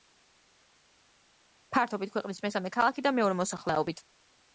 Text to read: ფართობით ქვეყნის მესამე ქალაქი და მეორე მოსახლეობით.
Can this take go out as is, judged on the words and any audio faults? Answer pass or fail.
pass